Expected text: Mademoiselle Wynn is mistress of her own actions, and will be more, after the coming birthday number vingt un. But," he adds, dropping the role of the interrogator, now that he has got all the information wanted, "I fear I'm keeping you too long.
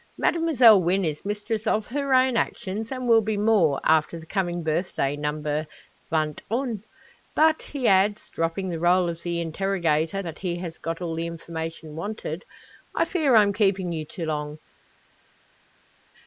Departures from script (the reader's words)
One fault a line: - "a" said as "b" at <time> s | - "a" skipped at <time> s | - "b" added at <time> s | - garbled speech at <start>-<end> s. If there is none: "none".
- "now" skipped at 10.2 s